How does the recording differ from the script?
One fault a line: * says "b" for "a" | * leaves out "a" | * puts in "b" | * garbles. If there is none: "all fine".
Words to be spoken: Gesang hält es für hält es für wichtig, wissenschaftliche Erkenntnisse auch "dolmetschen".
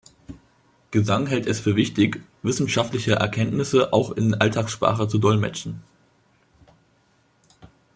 * leaves out "hält es für"
* puts in "in Alltagssprache zu"